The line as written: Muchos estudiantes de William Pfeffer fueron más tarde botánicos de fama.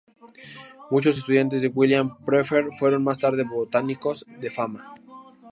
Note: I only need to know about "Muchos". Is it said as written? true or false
true